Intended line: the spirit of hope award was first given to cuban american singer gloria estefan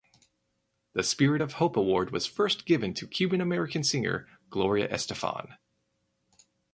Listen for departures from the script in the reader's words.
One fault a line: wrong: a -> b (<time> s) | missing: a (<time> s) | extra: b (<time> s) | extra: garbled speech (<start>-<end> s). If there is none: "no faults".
no faults